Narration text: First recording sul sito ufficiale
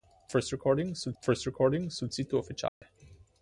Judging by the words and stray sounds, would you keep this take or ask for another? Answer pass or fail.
fail